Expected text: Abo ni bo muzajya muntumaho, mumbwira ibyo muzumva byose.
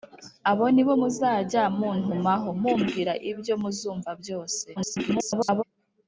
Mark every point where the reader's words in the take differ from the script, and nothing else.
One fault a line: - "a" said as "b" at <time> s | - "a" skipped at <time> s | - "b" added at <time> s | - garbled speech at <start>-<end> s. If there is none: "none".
- garbled speech at 4.8-5.6 s